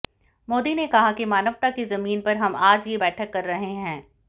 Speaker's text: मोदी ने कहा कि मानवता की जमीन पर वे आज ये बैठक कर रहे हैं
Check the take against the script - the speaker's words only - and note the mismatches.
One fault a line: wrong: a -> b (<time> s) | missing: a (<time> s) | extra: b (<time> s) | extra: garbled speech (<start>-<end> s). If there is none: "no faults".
wrong: वे -> हम (2.4 s)